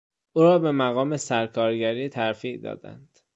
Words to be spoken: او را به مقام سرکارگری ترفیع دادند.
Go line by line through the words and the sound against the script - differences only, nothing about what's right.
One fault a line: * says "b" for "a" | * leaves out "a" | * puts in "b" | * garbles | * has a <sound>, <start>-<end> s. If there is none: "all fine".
all fine